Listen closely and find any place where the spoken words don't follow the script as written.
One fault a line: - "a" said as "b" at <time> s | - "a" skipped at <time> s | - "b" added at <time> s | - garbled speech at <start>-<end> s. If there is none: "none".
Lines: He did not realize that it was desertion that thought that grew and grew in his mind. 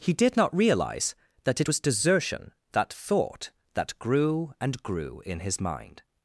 none